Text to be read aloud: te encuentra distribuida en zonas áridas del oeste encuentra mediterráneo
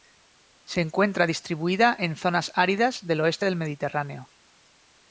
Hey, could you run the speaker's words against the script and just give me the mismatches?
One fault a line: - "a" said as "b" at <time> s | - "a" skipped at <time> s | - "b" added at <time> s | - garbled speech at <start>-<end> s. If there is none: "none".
- "te" said as "se" at 0.6 s
- "encuentra" said as "del" at 3.4 s